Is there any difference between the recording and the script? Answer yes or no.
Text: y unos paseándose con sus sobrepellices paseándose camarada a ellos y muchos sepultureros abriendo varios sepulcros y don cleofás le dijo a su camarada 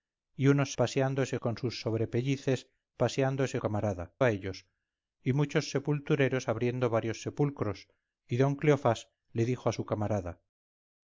no